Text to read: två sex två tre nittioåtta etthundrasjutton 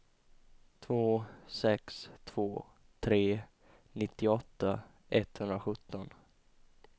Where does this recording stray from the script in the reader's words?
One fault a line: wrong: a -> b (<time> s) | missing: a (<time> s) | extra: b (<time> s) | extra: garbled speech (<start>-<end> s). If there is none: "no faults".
no faults